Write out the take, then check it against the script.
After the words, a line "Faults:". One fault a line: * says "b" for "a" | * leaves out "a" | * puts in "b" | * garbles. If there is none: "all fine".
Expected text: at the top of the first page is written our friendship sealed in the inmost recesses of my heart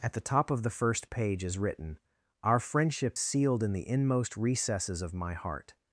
at the top of the first page is written our friendship sealed in the inmost recesses of my heart
Faults:
all fine